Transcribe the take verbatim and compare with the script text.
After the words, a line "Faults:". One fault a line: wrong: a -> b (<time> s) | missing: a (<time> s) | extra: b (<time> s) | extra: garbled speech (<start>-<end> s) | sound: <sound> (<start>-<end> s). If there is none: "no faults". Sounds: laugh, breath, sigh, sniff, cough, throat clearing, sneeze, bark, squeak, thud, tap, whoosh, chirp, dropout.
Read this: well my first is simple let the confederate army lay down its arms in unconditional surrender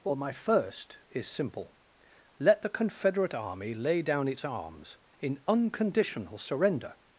well my first is simple let the confederate army lay down its arms in unconditional surrender
Faults:
no faults